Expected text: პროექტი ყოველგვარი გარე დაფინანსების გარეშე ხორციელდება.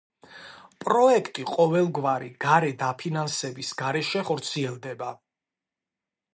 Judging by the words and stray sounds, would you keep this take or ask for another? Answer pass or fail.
pass